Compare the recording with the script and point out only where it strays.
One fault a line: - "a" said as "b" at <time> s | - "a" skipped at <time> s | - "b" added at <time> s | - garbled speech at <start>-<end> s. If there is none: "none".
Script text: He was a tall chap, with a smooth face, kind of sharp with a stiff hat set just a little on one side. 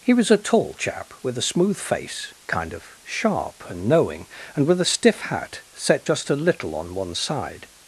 - "and knowing and" added at 3.7 s